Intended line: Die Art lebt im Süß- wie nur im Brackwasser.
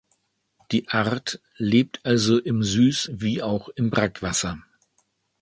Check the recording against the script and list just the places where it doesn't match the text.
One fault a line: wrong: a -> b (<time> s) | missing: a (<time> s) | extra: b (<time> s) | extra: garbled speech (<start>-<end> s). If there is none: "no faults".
extra: also (2.0 s)
wrong: nur -> auch (3.4 s)